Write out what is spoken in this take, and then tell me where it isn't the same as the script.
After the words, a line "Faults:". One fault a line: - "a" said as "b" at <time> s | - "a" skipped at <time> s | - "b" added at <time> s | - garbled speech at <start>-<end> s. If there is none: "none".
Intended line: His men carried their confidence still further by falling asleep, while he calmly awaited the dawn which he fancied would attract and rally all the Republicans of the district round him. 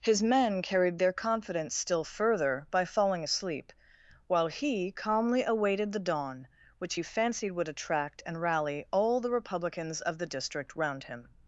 His men carried their confidence still further by falling asleep, while he calmly awaited the dawn which he fancied would attract and rally all the Republicans of the district round him.
Faults:
none